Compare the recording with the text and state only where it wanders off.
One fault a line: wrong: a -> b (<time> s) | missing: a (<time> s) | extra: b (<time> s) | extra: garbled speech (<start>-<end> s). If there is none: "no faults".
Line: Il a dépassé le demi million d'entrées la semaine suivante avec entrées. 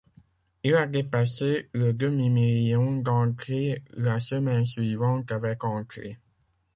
no faults